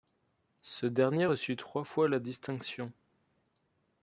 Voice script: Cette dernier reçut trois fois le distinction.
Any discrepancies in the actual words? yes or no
yes